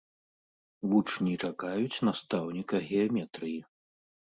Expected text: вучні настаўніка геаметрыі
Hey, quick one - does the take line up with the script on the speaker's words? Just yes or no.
no